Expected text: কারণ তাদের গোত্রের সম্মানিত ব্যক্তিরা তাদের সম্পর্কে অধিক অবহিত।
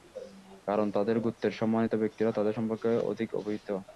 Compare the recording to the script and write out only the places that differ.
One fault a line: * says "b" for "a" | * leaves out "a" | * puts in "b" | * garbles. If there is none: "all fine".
all fine